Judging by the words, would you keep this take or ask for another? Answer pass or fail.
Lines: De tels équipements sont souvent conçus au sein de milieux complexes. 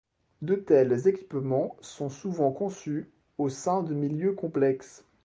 pass